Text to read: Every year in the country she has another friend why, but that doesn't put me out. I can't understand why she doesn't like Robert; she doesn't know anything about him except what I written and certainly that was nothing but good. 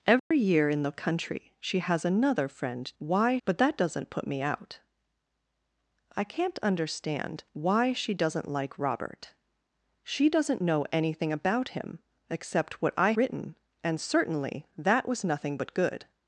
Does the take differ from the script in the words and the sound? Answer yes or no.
yes